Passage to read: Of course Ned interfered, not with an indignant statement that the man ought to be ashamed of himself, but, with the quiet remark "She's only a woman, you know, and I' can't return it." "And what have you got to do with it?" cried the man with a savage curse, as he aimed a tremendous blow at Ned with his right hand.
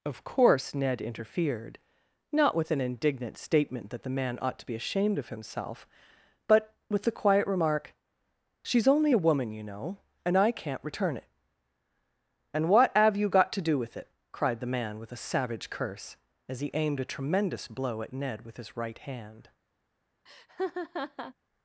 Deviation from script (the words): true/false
false